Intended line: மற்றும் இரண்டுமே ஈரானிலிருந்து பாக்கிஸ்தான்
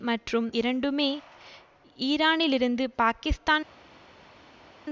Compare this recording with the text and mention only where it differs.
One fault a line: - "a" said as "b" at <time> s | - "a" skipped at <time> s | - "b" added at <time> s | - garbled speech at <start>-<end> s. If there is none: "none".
none